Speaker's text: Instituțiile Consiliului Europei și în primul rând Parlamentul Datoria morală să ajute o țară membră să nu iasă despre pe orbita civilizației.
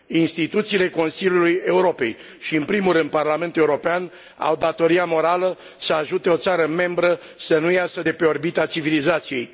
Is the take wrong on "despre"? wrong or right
wrong